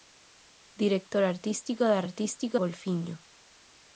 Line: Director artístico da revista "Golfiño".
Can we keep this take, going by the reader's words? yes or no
no